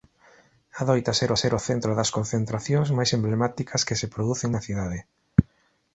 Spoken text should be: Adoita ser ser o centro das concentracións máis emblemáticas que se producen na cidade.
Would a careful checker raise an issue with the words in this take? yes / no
no